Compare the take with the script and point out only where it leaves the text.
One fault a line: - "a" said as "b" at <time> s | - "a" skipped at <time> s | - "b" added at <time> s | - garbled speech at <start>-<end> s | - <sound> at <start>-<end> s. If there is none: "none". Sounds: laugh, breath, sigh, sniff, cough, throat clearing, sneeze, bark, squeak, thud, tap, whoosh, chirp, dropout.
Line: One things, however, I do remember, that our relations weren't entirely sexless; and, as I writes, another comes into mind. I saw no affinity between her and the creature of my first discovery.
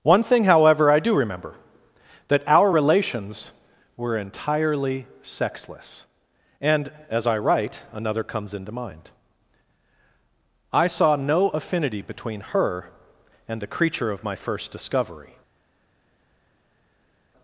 - "things" said as "thing" at 0.2 s
- "weren't" said as "were" at 4.0 s
- "writes" said as "write" at 7.4 s